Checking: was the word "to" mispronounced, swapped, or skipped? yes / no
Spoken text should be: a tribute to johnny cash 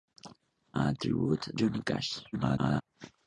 yes